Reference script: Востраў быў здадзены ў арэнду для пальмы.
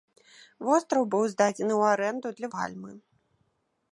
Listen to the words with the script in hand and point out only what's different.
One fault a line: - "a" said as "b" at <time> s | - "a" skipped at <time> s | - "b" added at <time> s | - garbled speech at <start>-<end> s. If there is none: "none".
none